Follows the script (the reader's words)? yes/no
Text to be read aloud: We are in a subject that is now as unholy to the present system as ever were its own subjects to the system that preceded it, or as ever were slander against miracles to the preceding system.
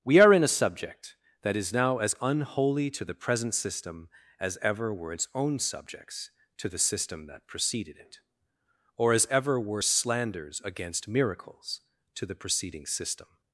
no